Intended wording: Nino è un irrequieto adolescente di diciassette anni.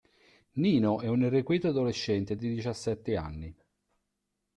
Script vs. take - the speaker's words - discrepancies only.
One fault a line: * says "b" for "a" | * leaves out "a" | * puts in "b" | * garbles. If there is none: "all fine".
all fine